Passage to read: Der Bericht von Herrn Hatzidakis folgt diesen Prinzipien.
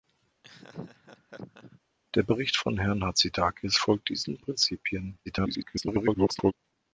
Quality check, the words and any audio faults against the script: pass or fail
fail